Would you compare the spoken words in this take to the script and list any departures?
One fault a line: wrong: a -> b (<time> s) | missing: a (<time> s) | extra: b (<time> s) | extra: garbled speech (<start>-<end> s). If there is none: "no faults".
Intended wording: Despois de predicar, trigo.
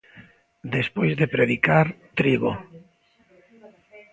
no faults